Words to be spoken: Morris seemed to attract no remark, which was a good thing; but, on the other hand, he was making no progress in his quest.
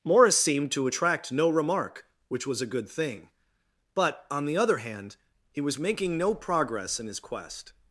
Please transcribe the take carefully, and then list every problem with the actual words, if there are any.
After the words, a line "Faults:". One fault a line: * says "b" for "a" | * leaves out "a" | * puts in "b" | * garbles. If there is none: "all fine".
Morris seemed to attract no remark, which was a good thing; but, on the other hand, he was making no progress in his quest.
Faults:
all fine